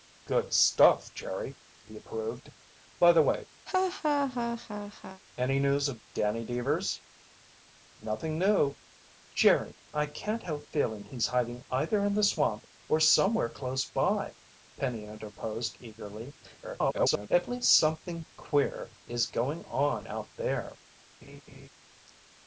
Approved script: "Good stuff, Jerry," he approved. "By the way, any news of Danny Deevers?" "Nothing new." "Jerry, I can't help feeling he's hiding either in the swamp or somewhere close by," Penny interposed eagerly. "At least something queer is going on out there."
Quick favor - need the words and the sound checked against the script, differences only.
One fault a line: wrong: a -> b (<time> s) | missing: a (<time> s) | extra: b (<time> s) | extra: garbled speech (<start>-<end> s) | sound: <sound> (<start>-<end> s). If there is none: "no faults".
sound: laugh (3.7-5.2 s)
extra: garbled speech (16.6-17.3 s)
sound: laugh (21.2-21.7 s)